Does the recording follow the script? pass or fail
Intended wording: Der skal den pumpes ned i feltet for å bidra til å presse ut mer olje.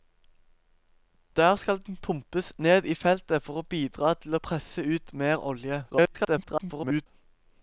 fail